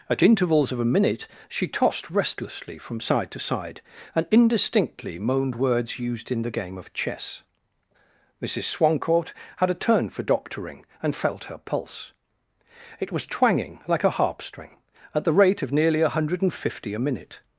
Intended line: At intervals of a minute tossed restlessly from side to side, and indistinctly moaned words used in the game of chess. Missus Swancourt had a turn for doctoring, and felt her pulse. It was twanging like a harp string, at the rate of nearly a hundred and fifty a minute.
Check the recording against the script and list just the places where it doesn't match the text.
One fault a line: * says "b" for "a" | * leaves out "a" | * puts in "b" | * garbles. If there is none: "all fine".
* puts in "she"